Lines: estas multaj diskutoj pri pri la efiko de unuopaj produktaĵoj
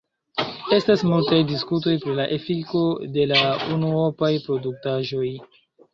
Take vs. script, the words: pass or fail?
fail